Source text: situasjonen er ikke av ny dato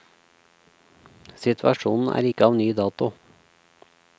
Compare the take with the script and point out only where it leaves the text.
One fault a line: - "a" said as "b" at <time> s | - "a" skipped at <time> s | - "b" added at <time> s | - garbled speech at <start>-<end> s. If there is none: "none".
none